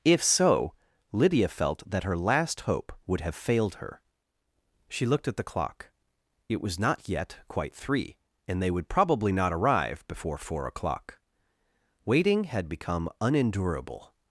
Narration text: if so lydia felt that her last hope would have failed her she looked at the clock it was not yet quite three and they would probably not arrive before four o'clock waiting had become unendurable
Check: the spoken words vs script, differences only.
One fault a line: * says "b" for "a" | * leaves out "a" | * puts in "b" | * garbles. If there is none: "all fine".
all fine